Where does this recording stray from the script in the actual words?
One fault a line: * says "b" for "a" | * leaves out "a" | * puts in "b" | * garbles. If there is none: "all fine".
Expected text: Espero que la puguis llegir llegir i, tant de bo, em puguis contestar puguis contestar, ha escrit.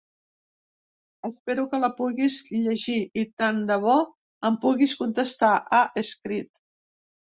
* leaves out "llegir"
* leaves out "puguis contestar"